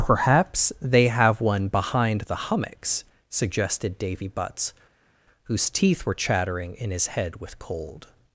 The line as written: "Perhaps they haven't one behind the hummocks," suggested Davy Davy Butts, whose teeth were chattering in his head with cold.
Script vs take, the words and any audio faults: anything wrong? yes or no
yes